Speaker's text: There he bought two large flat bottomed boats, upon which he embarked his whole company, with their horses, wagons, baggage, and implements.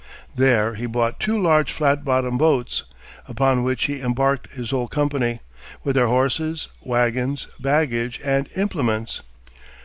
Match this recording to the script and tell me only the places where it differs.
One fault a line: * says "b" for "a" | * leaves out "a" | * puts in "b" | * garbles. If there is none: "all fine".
all fine